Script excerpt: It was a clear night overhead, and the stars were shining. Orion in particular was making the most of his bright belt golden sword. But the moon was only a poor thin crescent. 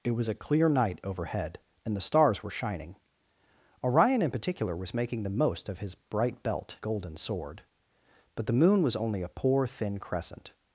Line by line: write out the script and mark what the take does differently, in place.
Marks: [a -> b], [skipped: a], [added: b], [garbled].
It was a clear night overhead, and the stars were shining. Orion in particular was making the most of his bright belt golden sword. But the moon was only a poor thin crescent.